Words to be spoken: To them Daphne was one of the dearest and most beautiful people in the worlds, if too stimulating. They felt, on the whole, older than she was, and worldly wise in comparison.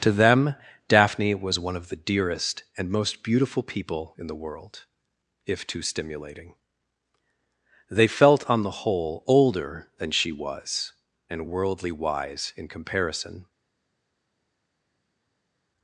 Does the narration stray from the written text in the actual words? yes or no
yes